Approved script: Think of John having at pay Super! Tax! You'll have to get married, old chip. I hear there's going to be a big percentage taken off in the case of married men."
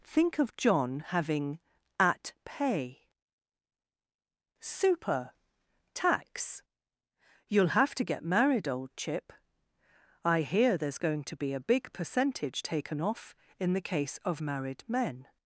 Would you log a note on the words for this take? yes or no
no